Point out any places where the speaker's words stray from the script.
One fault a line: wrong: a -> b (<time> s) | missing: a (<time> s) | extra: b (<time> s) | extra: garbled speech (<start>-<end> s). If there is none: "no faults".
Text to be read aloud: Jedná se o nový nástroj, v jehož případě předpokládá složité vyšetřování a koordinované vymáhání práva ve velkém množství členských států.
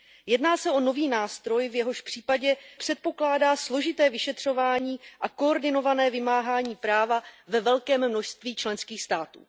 no faults